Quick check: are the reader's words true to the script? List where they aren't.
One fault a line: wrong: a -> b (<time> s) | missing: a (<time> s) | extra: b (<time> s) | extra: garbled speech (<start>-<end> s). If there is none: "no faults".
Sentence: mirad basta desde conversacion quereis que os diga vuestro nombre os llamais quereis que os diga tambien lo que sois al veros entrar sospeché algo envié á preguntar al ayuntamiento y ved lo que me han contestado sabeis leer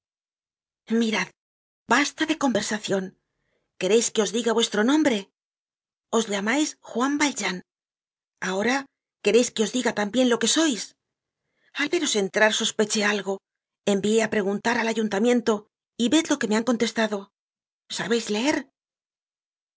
wrong: desde -> de (2.3 s)
extra: juan valjean ahora (6.9 s)